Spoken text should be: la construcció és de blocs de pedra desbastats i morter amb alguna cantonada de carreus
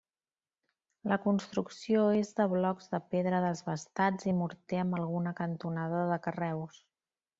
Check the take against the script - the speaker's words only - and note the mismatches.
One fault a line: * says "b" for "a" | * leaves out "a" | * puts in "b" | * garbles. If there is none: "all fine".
all fine